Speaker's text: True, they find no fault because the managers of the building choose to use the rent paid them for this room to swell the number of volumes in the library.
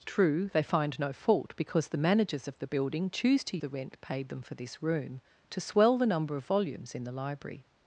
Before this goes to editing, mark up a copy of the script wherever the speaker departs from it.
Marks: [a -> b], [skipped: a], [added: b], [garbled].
True, they find no fault because the managers of the building choose to [skipped: use] the rent paid them for this room to swell the number of volumes in the library.